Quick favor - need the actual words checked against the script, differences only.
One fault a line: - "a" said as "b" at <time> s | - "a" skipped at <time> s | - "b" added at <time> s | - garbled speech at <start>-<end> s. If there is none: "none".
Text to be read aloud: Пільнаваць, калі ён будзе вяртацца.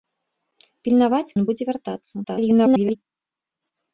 - "калі" skipped at 1.4 s
- garbled speech at 2.2-3.0 s